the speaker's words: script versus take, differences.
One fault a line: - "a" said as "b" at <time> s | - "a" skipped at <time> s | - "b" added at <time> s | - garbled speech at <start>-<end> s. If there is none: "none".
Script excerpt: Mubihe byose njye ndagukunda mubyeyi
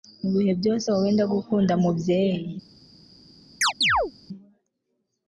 - "njye" said as "wowe" at 0.9 s